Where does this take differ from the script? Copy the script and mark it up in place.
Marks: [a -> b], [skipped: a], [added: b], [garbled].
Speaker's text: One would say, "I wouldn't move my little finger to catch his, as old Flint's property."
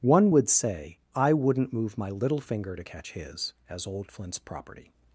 One would say, "I wouldn't move my little finger to catch his, as old Flint's property."